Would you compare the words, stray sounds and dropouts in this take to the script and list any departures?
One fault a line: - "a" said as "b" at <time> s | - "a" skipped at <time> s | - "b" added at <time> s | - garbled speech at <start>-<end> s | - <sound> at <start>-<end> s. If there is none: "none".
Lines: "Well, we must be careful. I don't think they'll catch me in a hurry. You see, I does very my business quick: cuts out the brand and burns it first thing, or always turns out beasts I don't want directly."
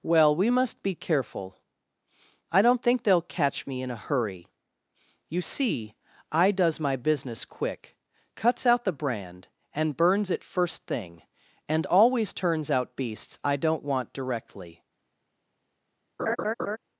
- "very" skipped at 6.8 s
- "or" said as "and" at 11.7 s
- laugh at 16.2-16.8 s